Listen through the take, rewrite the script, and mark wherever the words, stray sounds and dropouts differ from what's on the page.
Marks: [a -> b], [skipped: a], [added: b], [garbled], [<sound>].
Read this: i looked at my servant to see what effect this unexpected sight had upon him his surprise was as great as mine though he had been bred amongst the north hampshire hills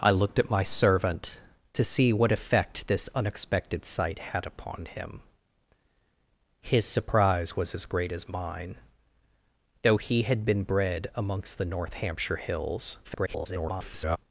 i looked at my servant to see what effect this unexpected sight had upon him his surprise was as great as mine though he had been bred amongst the north hampshire hills [garbled]